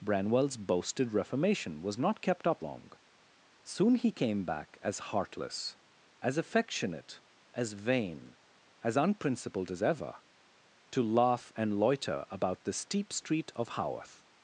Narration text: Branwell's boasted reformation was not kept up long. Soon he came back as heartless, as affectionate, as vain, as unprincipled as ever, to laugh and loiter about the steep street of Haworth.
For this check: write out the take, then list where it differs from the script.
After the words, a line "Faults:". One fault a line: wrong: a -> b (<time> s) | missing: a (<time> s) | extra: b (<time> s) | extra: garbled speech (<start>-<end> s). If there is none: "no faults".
Branwell's boasted reformation was not kept up long. Soon he came back as heartless, as affectionate, as vain, as unprincipled as ever, to laugh and loiter about the steep street of Haworth.
Faults:
no faults